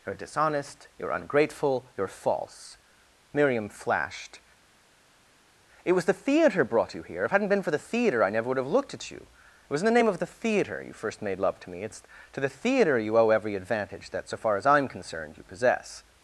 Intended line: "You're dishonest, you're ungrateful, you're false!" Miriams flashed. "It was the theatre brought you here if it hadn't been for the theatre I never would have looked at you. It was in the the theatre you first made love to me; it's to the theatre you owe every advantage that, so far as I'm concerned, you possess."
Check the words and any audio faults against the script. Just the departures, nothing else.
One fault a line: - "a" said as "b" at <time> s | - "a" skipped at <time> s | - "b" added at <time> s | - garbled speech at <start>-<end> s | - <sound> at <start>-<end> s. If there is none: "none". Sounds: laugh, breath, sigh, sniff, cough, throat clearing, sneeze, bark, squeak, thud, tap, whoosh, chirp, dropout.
- "Miriams" said as "Miriam" at 3.3 s
- "name of" added at 10.0 s